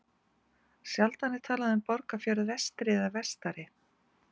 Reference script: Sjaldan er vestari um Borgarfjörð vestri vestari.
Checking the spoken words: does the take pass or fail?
fail